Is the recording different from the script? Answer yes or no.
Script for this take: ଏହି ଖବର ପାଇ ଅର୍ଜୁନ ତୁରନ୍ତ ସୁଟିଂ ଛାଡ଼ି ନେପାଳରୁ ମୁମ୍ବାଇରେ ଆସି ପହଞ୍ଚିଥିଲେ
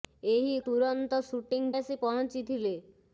yes